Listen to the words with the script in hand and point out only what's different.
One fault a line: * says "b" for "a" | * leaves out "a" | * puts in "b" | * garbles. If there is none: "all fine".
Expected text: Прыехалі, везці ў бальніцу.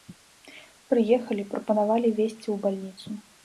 * puts in "прапанавалі"